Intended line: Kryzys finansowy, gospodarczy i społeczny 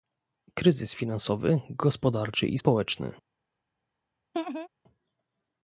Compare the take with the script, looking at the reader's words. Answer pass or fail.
pass